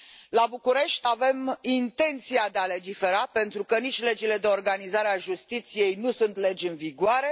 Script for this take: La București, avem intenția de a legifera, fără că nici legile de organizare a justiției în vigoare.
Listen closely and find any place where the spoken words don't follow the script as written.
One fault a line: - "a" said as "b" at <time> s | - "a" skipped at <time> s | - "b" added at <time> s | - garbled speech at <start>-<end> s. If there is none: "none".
- "fără" said as "pentru" at 3.3 s
- "nu sunt legi" added at 5.9 s